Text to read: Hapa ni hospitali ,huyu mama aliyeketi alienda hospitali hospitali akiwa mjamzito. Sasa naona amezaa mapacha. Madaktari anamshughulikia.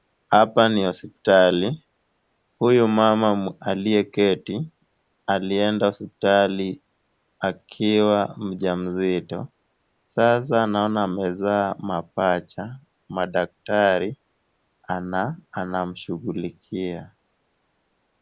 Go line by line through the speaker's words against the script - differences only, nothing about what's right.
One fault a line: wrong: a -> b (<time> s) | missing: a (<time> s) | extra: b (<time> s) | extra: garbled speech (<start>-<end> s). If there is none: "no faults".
missing: hospitali (6.8 s)